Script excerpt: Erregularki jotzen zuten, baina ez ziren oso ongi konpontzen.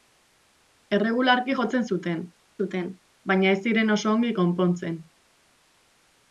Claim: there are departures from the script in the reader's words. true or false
true